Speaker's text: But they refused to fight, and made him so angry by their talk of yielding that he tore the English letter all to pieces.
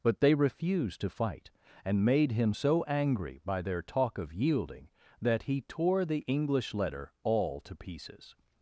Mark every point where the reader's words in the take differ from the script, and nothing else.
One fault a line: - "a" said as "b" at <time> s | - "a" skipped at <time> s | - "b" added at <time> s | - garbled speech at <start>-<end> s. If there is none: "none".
none